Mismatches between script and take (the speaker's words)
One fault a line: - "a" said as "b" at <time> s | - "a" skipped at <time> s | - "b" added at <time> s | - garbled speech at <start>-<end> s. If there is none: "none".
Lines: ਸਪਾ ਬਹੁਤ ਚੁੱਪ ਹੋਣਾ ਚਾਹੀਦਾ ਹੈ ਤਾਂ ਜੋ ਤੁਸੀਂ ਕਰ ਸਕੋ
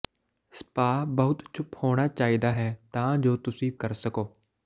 none